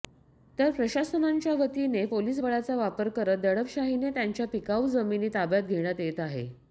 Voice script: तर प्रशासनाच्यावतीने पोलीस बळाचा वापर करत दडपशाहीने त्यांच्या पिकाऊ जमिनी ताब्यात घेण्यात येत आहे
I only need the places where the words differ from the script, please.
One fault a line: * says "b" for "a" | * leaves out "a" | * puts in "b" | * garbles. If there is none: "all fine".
all fine